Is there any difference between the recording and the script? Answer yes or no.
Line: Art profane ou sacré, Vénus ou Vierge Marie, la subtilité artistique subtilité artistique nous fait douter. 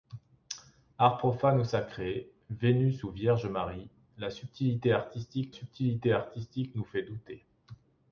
no